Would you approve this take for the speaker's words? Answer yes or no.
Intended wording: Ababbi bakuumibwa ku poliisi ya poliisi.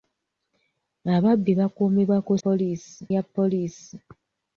yes